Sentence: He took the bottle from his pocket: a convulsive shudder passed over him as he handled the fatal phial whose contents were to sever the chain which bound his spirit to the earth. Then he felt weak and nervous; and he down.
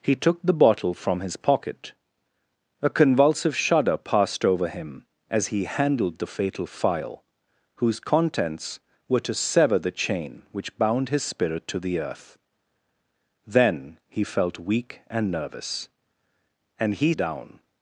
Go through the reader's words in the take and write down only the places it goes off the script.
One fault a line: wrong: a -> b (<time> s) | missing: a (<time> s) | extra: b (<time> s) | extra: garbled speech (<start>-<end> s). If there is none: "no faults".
no faults